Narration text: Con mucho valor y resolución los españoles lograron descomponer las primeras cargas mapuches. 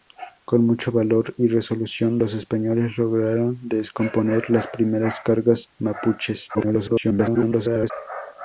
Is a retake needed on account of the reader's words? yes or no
yes